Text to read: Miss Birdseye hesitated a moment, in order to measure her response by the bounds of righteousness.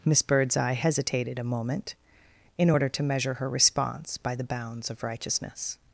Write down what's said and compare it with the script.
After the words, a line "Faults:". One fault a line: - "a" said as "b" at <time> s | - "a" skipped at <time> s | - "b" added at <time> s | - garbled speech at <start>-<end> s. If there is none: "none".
Miss Birdseye hesitated a moment, in order to measure her response by the bounds of righteousness.
Faults:
none